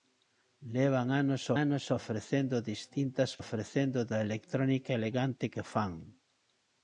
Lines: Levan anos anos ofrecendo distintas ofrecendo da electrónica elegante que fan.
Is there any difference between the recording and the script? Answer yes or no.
no